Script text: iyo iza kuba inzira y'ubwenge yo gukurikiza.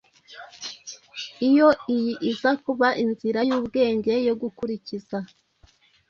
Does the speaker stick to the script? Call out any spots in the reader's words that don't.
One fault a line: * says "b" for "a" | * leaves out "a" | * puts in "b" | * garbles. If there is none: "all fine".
* puts in "iyi"